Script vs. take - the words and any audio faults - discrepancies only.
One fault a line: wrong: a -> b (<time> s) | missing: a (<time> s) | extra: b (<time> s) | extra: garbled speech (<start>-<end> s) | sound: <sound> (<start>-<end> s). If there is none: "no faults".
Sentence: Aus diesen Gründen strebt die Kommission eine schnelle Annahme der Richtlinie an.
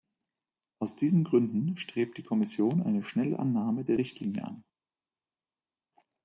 no faults